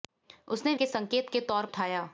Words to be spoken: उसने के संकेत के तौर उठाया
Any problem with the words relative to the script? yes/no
no